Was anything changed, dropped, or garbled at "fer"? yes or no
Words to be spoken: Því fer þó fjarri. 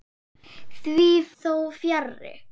yes